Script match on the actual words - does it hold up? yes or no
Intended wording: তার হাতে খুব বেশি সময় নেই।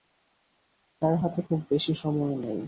yes